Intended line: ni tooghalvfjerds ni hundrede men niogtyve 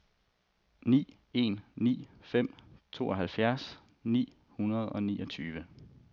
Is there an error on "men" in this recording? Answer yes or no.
yes